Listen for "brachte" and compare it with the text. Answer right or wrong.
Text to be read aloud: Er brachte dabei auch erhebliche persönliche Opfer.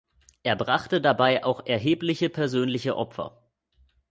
right